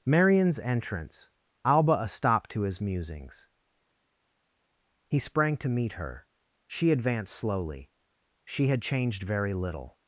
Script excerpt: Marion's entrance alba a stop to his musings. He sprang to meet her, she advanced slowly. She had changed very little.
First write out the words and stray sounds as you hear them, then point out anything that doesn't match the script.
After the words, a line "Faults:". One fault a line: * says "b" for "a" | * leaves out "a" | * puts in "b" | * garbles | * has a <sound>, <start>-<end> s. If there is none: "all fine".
Marion's entrance alba a stop to his musings. He sprang to meet her, she advanced slowly. She had changed very little.
Faults:
all fine